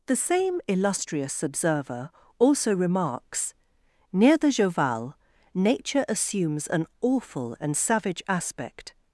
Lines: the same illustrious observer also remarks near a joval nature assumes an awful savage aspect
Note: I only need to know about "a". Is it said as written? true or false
false